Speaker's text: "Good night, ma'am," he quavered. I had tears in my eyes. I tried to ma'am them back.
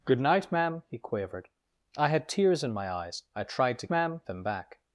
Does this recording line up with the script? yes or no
yes